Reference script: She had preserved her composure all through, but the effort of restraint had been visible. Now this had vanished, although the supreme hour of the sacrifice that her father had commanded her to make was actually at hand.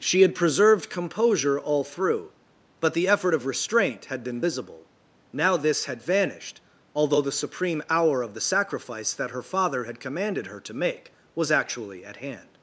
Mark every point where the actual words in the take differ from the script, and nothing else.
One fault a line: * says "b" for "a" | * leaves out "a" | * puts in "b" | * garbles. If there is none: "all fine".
* leaves out "her"